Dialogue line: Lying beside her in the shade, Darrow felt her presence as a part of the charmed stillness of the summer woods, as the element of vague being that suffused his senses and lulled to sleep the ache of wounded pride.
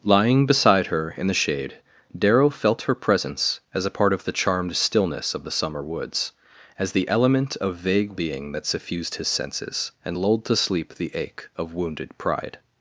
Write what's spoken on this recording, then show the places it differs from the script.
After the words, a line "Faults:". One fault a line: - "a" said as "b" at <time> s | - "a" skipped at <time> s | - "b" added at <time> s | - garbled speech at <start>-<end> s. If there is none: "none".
Lying beside her in the shade, Darrow felt her presence as a part of the charmed stillness of the summer woods, as the element of vague being that suffused his senses and lulled to sleep the ache of wounded pride.
Faults:
none